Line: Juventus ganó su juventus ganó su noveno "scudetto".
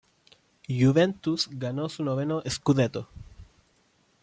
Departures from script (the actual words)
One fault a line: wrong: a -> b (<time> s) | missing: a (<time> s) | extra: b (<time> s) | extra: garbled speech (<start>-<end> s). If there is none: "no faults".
missing: juventus ganó su (2.0 s)